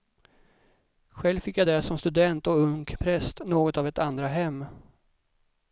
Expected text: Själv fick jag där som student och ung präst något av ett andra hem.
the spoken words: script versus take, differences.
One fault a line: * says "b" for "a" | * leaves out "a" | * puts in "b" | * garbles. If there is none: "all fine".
all fine